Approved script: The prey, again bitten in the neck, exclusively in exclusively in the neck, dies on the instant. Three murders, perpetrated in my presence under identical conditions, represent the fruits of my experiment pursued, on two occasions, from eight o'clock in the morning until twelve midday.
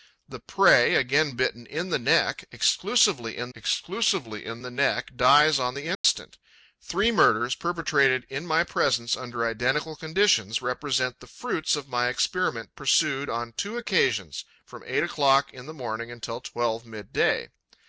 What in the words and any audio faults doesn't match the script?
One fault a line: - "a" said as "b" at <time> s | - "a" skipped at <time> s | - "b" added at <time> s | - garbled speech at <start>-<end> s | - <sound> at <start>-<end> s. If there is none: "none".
- dropout at 5.9-6.0 s